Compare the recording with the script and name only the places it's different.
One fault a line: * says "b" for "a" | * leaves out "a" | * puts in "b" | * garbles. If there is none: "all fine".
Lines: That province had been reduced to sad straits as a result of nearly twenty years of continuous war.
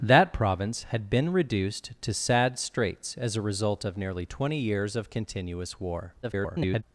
* garbles